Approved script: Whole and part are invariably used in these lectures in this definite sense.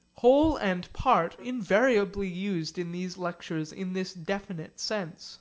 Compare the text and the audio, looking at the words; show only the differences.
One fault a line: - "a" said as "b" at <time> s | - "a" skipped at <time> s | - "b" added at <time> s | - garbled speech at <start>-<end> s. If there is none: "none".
- "are" skipped at 1.4 s